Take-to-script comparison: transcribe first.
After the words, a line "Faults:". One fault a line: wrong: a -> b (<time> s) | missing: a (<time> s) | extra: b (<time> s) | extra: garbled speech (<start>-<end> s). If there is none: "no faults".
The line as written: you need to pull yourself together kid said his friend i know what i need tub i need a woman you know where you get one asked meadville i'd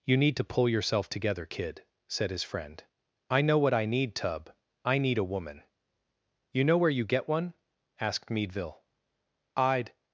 you need to pull yourself together kid said his friend i know what i need tub i need a woman you know where you get one asked meadville i'd
Faults:
no faults